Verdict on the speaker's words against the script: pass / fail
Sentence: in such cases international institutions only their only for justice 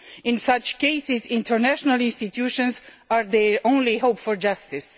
fail